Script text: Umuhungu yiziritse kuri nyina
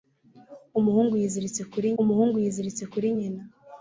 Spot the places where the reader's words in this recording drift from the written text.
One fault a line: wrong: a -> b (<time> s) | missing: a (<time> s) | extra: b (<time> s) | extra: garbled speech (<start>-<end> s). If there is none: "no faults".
extra: umuhungu yiziritse kuri (2.0 s)